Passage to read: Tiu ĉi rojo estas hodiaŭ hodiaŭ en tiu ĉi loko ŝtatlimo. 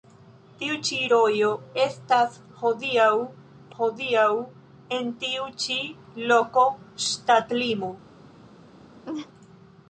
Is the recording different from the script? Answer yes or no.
no